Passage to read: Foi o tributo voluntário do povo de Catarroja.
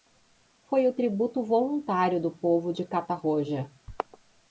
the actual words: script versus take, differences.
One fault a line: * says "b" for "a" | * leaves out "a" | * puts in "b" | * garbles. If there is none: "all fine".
all fine